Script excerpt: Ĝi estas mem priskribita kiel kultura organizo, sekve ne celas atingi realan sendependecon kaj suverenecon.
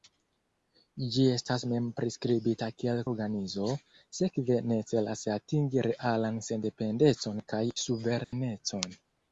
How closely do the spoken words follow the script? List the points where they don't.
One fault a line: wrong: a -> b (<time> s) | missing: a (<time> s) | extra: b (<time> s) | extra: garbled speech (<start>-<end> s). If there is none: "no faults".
missing: kultura (3.0 s)